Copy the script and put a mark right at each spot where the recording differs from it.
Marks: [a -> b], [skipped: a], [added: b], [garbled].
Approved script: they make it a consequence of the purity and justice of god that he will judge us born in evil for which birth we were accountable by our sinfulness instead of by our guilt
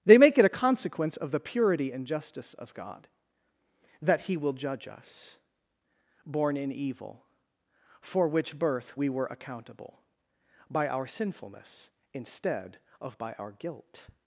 they make it a consequence of the purity and justice of god that he will judge us born in evil for which birth we were accountable by our sinfulness instead of by our guilt